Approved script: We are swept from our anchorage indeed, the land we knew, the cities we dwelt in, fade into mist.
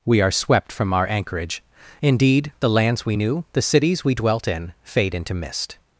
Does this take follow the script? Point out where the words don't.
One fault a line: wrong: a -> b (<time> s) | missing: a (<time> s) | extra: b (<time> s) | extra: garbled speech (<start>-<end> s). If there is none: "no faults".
wrong: land -> lands (2.7 s)